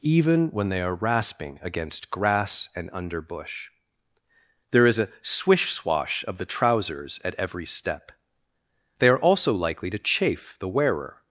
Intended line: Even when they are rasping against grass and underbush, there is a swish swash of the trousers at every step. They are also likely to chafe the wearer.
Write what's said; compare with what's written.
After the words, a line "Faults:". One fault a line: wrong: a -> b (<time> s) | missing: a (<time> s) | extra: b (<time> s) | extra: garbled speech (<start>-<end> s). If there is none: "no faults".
Even when they are rasping against grass and underbush, there is a swish swash of the trousers at every step. They are also likely to chafe the wearer.
Faults:
no faults